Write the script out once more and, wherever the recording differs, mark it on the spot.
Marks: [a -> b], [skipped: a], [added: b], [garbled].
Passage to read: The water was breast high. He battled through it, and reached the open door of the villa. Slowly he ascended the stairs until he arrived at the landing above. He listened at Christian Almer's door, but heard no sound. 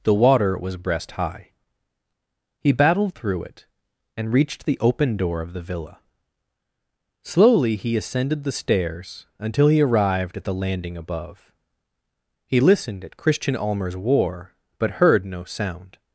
The water was breast high. He battled through it, and reached the open door of the villa. Slowly he ascended the stairs until he arrived at the landing above. He listened at Christian Almer's [door, -> war] but heard no sound.